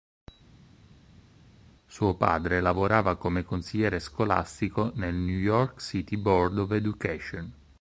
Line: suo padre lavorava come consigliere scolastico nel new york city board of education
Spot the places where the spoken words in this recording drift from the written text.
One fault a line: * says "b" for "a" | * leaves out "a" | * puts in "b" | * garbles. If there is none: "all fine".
all fine